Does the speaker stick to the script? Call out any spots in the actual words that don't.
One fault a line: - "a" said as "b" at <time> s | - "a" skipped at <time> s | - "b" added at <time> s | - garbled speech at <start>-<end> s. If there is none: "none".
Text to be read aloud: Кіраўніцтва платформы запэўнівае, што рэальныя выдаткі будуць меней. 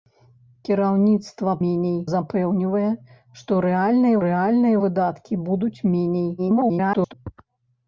- "платформы" said as "меней" at 1.6 s
- "рэальныя" added at 4.3 s
- garbled speech at 6.4-7.1 s